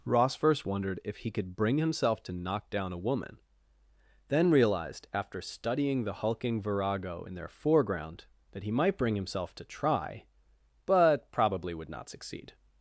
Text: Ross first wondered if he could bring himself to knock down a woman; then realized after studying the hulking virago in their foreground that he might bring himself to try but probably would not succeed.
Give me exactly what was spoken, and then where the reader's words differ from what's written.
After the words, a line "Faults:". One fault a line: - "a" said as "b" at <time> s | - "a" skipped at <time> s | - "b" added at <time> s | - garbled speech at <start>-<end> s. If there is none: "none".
Ross first wondered if he could bring himself to knock down a woman; then realized after studying the hulking virago in their foreground that he might bring himself to try but probably would not succeed.
Faults:
none